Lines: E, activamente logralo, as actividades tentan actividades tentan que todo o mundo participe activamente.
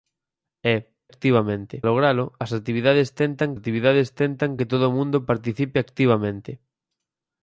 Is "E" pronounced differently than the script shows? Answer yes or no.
no